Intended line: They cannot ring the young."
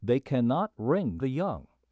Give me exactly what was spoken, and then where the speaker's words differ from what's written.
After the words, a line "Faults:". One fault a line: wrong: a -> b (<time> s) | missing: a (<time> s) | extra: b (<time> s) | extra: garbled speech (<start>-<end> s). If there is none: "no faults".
They cannot ring the young."
Faults:
no faults